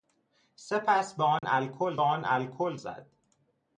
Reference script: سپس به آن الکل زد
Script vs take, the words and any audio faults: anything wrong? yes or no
yes